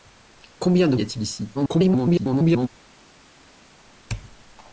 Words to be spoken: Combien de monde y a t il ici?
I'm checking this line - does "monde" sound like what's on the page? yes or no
no